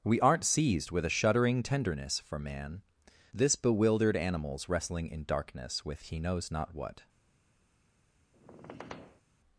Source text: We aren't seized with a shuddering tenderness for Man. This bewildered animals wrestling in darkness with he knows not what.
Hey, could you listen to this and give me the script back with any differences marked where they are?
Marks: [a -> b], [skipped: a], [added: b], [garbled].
We aren't seized with a shuddering tenderness for Man. This bewildered animals wrestling in darkness with he knows not what.